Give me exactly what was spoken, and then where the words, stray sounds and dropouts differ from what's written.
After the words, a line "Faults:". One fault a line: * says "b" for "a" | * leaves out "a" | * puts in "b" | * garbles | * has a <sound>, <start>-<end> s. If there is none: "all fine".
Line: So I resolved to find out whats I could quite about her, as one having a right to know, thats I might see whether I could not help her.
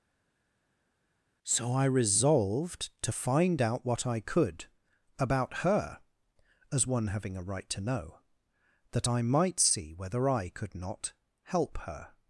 So I resolved to find out what I could about her, as one having a right to know, that I might see whether I could not help her.
Faults:
* says "what" for "whats"
* leaves out "quite"
* says "that" for "thats"